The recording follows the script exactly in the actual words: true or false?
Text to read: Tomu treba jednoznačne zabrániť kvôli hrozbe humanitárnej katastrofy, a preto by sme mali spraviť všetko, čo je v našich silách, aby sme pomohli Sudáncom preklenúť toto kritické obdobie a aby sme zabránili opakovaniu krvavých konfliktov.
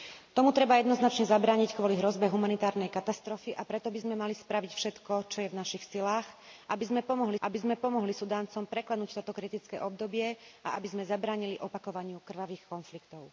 false